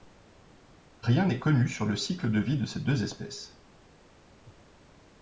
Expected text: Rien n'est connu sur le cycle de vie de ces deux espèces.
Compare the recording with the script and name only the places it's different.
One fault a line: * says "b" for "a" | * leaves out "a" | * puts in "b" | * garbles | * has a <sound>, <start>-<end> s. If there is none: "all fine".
all fine